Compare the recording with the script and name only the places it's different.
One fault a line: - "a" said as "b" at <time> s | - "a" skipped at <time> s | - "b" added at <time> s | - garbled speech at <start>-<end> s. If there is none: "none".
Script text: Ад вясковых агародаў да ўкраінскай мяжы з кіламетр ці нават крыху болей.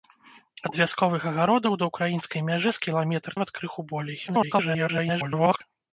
- "ці" skipped at 3.3 s
- garbled speech at 4.3-5.6 s